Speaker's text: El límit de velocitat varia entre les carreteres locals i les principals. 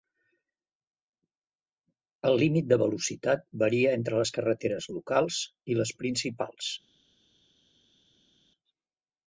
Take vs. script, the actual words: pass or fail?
pass